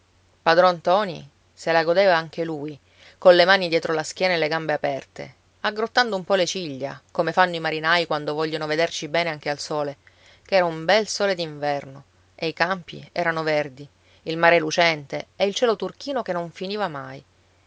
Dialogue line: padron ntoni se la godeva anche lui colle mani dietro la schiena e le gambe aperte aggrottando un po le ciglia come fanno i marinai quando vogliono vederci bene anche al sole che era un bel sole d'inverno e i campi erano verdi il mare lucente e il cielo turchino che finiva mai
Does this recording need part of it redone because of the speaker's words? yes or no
yes